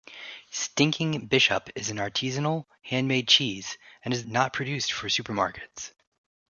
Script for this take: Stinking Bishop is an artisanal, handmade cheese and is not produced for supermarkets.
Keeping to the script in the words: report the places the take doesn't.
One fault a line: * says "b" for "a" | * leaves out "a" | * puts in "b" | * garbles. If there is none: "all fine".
all fine